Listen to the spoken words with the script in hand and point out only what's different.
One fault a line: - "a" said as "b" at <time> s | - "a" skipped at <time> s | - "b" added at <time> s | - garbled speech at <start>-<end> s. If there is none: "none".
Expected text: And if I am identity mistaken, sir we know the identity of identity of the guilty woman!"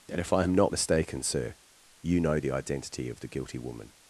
- "identity" said as "not" at 0.5 s
- "we" said as "you" at 2.0 s
- "identity of" skipped at 3.2 s